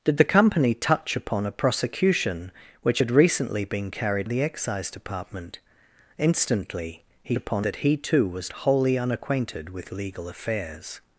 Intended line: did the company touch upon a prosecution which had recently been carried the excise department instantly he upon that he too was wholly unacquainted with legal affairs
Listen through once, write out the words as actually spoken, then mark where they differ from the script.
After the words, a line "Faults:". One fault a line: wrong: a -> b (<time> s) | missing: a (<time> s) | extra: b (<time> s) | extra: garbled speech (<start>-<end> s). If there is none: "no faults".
did the company touch upon a prosecution which had recently been carried the excise department instantly he upon that he too was wholly unacquainted with legal affairs
Faults:
no faults